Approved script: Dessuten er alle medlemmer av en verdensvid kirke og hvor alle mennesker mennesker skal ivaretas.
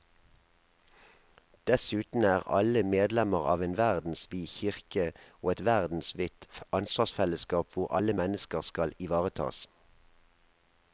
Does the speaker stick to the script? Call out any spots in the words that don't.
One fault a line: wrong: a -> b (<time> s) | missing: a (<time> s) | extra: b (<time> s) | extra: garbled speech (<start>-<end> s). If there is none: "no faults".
extra: et verdensvidt ansvarsfellesskap (5.5 s)
missing: mennesker (8.6 s)